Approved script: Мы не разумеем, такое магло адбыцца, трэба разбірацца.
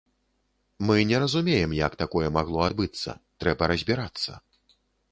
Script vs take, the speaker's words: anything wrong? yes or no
yes